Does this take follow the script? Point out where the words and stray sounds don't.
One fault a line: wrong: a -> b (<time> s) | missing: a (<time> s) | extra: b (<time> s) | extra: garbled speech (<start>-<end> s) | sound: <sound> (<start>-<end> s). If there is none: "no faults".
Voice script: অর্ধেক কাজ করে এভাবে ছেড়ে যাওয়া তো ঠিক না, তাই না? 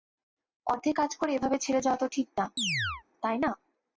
sound: chirp (2.6-3.0 s)